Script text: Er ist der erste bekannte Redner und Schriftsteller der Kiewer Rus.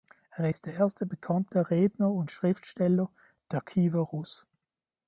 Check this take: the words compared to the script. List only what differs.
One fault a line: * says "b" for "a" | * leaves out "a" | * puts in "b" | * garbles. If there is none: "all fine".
all fine